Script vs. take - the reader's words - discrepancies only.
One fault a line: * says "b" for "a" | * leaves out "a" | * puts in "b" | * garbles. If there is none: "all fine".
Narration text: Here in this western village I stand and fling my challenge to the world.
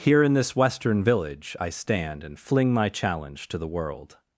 all fine